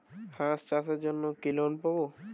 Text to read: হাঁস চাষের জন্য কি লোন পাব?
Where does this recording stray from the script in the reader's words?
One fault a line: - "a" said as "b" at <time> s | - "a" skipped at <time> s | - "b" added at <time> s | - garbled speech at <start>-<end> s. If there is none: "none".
none